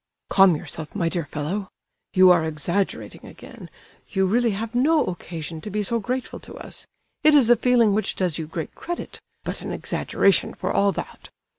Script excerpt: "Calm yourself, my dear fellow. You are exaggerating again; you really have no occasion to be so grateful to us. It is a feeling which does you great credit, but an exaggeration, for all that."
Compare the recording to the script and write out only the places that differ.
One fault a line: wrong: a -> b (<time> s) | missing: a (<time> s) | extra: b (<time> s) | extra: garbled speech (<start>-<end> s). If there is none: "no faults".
no faults